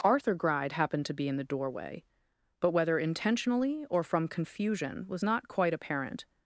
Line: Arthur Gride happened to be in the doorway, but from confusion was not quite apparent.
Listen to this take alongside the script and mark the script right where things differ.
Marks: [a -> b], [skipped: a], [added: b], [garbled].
Arthur Gride happened to be in the doorway, but [added: whether intentionally or] from confusion was not quite apparent.